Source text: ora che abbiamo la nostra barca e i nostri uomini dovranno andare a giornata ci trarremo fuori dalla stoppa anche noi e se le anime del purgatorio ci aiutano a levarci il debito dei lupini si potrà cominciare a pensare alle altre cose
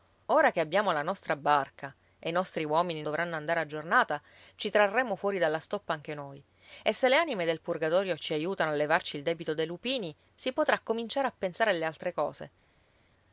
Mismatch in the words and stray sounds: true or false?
false